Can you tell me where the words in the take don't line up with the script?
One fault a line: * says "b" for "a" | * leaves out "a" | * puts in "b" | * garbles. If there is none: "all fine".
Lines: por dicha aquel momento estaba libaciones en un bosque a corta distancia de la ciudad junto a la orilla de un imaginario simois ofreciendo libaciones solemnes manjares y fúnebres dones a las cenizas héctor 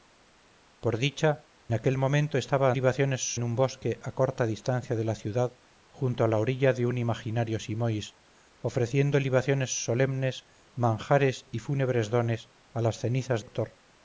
all fine